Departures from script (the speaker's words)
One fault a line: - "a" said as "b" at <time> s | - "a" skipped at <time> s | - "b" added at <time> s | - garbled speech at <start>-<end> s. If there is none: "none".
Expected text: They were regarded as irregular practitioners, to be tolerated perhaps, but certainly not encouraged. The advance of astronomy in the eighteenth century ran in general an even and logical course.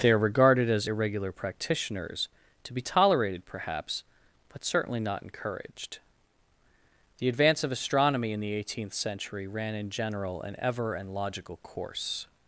- "were" said as "are" at 0.1 s
- "even" said as "ever" at 10.6 s